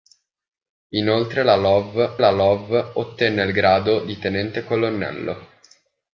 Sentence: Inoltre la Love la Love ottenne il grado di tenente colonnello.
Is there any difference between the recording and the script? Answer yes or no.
no